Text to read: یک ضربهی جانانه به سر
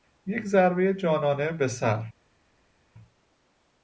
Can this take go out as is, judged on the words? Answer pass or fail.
pass